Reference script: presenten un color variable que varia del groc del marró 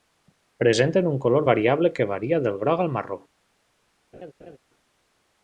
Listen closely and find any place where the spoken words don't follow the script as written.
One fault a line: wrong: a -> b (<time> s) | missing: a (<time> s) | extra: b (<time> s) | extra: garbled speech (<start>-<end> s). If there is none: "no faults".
wrong: del -> al (2.8 s)